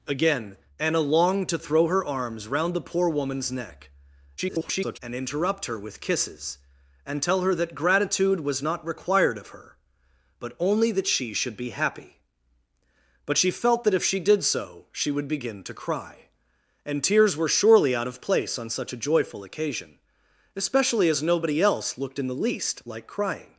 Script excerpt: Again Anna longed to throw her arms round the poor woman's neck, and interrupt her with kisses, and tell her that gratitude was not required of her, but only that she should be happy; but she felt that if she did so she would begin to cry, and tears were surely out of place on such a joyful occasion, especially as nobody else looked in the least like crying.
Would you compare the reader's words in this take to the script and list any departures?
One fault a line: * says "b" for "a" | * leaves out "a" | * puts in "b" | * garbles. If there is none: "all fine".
* garbles